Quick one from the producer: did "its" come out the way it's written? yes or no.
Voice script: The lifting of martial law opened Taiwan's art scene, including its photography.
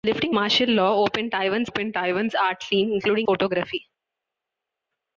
no